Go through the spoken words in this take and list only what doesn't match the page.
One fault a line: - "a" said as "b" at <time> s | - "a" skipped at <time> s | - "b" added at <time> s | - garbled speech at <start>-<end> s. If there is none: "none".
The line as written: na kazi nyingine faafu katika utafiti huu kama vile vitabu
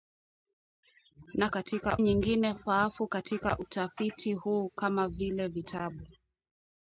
- "kazi" said as "katika" at 1.5 s